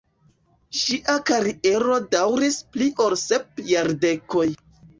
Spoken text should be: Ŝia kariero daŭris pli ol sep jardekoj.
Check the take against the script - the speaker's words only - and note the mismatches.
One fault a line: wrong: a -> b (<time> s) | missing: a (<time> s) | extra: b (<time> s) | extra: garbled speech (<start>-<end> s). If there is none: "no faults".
no faults